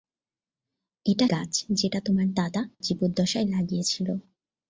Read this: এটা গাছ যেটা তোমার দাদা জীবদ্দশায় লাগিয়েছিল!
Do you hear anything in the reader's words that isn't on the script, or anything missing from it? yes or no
no